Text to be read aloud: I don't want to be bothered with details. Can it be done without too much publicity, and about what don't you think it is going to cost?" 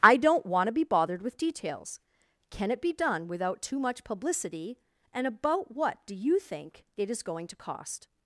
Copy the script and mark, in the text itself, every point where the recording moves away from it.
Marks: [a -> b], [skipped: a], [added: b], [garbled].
I don't want to be bothered with details. Can it be done without too much publicity, and about what [don't -> do] you think it is going to cost?"